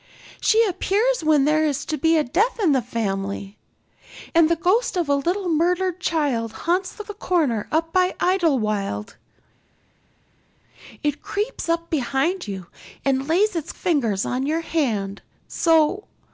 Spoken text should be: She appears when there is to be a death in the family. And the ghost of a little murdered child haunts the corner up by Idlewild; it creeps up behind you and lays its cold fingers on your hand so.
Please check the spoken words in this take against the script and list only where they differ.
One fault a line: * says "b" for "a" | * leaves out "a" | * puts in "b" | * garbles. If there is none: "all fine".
* puts in "the"
* leaves out "cold"